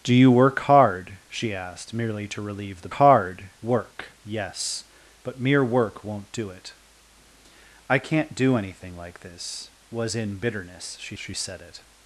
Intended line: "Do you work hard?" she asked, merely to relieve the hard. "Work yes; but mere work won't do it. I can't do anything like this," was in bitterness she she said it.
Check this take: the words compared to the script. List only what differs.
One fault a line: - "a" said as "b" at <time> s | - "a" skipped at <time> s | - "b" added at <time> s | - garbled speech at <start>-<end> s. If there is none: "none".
none